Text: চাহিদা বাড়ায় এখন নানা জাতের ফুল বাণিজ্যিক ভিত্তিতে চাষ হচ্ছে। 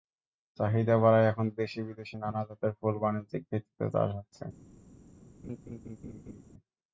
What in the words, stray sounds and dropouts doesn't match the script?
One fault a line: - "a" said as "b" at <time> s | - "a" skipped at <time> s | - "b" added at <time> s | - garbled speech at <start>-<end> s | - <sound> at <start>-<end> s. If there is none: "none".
- "দেশি-বিদেশি" added at 1.6 s
- laugh at 5.4-6.4 s